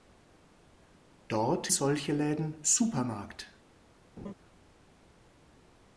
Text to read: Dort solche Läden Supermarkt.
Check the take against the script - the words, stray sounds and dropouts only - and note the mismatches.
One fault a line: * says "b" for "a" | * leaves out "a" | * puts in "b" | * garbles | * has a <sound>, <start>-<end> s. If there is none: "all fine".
* has a laugh, 4.2-4.3 s